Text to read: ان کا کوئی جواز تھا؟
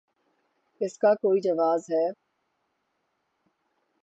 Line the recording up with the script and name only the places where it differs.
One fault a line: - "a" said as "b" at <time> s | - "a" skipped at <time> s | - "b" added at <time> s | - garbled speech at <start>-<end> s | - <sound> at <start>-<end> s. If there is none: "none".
- "ان" said as "اس" at 0.8 s
- "تھا" said as "ہے" at 1.9 s